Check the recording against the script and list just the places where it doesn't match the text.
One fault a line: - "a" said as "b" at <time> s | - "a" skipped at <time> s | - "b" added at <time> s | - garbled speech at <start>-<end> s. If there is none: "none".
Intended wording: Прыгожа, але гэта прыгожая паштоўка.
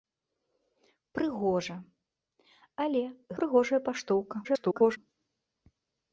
- "гэта" skipped at 3.0 s
- garbled speech at 4.4-5.0 s